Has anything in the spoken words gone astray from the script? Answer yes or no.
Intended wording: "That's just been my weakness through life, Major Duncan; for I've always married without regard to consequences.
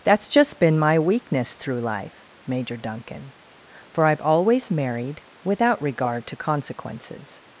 no